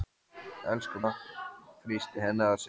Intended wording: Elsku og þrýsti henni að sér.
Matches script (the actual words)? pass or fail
pass